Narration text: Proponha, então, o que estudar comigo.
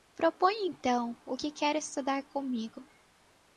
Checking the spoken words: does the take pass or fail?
fail